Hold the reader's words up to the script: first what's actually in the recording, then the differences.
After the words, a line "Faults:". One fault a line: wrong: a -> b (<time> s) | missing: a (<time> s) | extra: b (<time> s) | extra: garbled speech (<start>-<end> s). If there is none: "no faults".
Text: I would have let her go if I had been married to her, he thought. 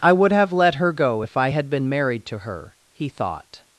I would have let her go if I had been married to her, he thought.
Faults:
no faults